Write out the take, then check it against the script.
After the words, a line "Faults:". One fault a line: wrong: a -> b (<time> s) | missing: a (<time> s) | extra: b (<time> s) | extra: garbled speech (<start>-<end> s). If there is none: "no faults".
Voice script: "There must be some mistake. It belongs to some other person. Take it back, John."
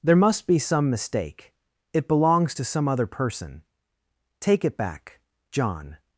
"There must be some mistake. It belongs to some other person. Take it back, John."
Faults:
no faults